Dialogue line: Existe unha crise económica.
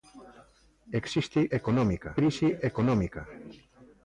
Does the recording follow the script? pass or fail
fail